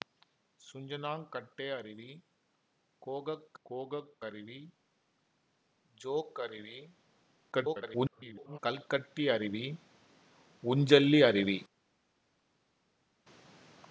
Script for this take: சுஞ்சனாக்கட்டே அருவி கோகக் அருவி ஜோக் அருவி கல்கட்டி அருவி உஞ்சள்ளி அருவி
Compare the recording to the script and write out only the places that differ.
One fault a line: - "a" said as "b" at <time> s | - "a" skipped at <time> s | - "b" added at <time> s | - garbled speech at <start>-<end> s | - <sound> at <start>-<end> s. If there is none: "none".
- "கோகக்" added at 3.6 s
- garbled speech at 7.5-8.6 s